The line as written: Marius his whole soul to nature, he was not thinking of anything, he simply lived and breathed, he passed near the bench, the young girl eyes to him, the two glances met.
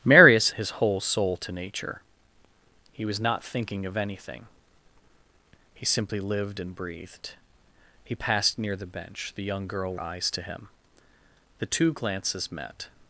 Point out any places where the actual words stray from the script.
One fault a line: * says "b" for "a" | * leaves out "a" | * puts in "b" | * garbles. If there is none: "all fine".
all fine